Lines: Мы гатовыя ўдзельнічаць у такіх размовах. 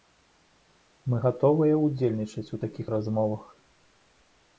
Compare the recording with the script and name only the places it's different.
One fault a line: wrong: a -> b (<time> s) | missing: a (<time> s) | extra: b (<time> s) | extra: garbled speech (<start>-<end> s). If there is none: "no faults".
no faults